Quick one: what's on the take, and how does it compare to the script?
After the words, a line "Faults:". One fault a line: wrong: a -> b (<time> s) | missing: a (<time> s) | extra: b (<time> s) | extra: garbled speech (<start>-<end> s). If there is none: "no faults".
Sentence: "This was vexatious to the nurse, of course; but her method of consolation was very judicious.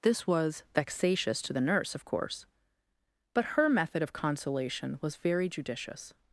"This was vexatious to the nurse, of course; but her method of consolation was very judicious.
Faults:
no faults